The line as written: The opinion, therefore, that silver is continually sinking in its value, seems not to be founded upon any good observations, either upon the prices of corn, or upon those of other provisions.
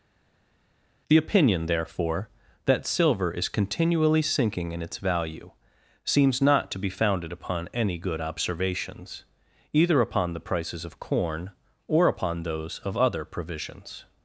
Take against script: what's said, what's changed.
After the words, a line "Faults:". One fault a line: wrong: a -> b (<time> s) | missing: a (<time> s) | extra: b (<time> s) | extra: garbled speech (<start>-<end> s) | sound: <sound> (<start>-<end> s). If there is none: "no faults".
The opinion, therefore, that silver is continually sinking in its value, seems not to be founded upon any good observations, either upon the prices of corn, or upon those of other provisions.
Faults:
no faults